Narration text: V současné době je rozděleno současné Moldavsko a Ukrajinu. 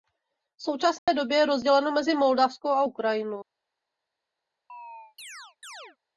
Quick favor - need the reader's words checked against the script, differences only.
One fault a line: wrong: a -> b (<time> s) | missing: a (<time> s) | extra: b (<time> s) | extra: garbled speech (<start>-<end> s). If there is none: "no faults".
wrong: současné -> mezi (1.9 s)